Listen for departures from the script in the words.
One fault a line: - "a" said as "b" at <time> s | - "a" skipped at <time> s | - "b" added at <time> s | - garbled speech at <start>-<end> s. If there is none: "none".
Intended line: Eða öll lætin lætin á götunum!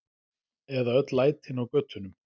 - "lætin" skipped at 1.6 s